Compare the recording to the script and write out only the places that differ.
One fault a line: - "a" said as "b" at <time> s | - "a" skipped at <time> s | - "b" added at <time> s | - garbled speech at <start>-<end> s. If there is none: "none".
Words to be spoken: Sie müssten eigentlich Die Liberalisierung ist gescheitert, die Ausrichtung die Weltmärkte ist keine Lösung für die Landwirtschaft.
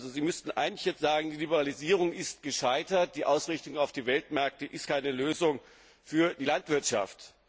- "jetzt sagen" added at 0.8 s
- "auf" added at 3.8 s